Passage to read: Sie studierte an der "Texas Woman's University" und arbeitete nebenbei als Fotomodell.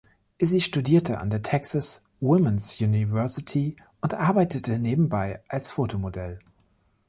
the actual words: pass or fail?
pass